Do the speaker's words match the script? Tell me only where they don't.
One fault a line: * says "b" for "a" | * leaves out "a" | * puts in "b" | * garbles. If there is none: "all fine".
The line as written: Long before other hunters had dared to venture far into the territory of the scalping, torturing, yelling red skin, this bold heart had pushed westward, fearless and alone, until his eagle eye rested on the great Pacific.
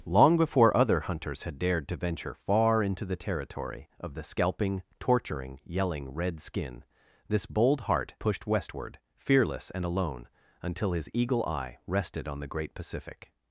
* leaves out "had"